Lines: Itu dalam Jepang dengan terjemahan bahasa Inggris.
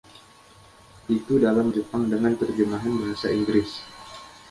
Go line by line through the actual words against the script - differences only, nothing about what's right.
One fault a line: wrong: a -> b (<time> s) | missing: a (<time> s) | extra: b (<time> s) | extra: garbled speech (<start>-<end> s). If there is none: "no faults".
no faults